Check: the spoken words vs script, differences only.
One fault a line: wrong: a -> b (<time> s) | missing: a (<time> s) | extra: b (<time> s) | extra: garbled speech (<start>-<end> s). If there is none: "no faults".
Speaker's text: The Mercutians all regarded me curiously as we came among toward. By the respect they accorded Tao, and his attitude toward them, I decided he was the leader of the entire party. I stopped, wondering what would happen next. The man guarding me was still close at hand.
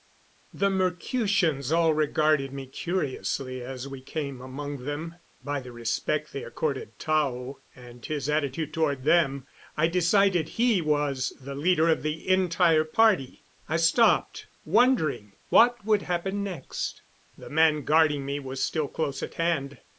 wrong: toward -> them (4.8 s)